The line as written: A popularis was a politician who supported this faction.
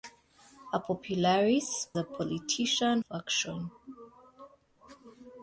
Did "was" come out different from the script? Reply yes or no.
yes